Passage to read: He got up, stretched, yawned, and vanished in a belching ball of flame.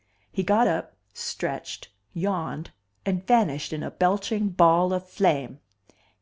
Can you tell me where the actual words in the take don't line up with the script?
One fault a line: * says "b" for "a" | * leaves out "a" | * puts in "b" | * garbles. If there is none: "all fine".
all fine